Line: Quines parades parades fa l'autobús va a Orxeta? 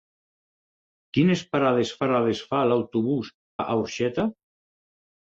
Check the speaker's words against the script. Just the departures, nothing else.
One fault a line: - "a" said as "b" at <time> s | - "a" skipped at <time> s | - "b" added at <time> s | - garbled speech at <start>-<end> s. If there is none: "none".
none